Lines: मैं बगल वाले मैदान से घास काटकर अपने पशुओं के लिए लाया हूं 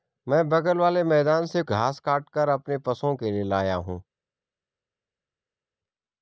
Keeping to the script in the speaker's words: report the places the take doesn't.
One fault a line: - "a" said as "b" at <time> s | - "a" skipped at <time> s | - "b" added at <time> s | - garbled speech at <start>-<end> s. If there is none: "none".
none